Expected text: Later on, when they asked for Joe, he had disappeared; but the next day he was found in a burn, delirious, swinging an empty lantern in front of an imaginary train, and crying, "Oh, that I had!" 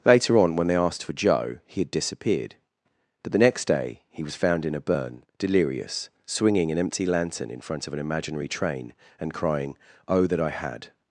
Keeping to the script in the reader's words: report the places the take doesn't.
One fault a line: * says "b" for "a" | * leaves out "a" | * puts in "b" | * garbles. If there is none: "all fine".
all fine